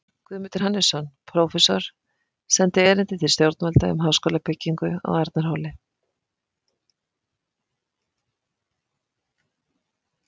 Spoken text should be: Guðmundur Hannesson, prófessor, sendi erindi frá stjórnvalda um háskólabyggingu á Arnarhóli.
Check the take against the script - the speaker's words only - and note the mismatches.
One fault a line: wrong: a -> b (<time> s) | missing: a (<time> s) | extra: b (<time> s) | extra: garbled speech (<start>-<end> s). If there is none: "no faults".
wrong: frá -> til (3.2 s)